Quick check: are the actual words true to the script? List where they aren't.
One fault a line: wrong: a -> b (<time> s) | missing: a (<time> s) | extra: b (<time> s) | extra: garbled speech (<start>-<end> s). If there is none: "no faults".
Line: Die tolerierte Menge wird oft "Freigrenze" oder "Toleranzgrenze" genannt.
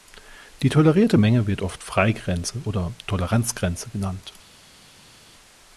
no faults